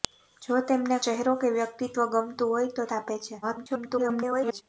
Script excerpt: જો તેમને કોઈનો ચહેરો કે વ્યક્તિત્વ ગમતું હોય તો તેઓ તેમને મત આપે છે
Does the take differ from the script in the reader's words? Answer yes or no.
yes